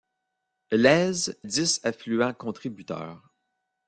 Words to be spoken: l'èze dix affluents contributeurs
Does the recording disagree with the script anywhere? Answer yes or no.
no